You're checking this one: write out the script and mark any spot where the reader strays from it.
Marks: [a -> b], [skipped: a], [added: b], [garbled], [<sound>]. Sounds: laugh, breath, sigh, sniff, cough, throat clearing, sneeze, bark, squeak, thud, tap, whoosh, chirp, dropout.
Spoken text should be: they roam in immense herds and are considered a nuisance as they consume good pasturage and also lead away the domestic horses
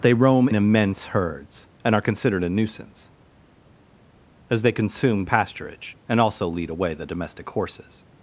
they roam [skipped: in] immense herds and are considered a nuisance as they consume [skipped: good] pasturage and also lead away the domestic horses